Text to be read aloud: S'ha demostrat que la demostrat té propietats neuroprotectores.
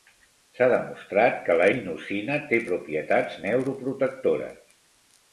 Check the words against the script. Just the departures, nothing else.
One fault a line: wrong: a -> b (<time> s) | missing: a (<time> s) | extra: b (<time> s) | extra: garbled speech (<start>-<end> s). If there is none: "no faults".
wrong: demostrat -> inosina (1.7 s)